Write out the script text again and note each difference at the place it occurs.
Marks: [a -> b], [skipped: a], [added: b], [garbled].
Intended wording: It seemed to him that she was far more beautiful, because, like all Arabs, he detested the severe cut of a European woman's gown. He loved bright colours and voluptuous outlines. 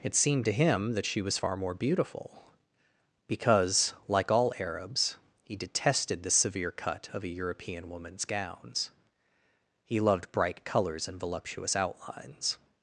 It seemed to him that she was far more beautiful, because, like all Arabs, he detested the severe cut of a European woman's [gown. -> gowns] He loved bright colours and voluptuous outlines.